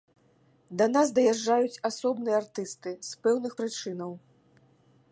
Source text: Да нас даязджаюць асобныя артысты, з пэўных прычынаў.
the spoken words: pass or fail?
pass